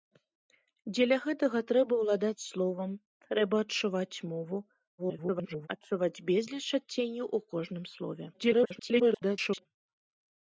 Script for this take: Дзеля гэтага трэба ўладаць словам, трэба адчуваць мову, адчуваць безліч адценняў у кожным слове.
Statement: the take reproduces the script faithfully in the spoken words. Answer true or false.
false